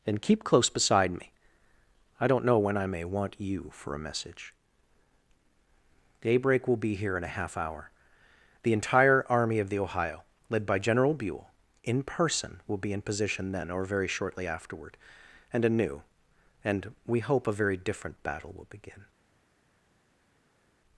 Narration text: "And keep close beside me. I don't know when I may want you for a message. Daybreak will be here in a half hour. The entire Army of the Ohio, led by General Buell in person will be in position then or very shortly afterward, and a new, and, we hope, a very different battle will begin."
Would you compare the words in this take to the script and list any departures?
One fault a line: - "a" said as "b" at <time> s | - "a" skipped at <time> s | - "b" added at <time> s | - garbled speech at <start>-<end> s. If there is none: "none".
none